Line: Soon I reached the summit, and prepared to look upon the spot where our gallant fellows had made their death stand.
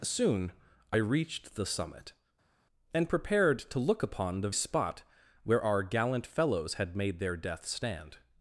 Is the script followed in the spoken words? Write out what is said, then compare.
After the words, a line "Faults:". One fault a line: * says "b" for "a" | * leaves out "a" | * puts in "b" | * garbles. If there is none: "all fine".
Soon I reached the summit, and prepared to look upon the spot where our gallant fellows had made their death stand.
Faults:
all fine